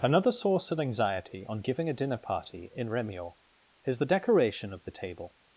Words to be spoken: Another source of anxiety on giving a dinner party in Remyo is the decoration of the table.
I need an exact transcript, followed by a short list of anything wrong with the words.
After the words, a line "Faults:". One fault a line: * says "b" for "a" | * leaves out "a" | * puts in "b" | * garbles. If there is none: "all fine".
Another source of anxiety on giving a dinner party in Remyo is the decoration of the table.
Faults:
all fine